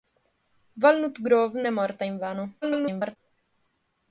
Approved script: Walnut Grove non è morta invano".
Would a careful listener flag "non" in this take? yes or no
yes